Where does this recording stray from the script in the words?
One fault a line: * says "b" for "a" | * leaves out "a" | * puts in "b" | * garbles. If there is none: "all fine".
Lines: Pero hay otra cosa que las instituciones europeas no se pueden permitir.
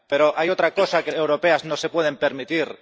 * leaves out "las instituciones"